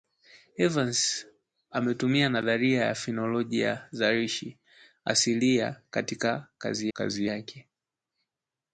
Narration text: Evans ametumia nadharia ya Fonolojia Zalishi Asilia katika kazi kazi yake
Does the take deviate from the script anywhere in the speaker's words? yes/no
no